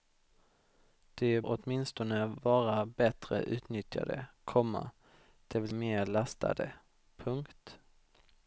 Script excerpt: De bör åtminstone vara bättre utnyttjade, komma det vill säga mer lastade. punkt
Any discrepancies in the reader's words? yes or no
yes